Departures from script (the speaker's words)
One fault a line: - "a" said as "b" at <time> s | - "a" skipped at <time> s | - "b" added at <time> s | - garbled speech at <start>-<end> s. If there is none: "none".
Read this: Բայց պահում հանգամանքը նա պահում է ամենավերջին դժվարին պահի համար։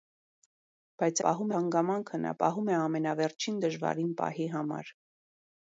none